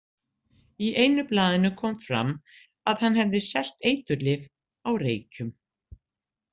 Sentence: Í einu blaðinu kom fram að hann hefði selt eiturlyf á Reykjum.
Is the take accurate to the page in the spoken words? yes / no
yes